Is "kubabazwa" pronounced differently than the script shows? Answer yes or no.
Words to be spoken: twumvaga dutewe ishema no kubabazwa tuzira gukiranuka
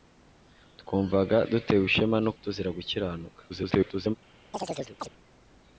yes